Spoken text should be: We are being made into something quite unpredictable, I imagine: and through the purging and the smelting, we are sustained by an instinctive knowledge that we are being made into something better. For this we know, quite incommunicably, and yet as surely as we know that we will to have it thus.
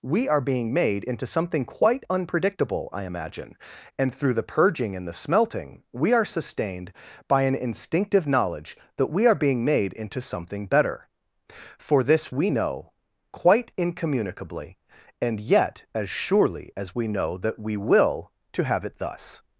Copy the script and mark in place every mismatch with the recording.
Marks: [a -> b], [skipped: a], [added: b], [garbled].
We are being made into something quite unpredictable, I imagine: and through the purging and the smelting, we are sustained by an instinctive knowledge that we are being made into something better. For this we know, quite incommunicably, and yet as surely as we know that we will to have it thus.